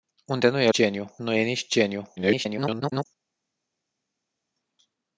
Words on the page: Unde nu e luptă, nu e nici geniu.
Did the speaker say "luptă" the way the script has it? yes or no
no